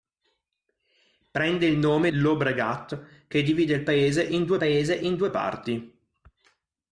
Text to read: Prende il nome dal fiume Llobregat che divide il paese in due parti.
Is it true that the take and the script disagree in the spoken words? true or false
true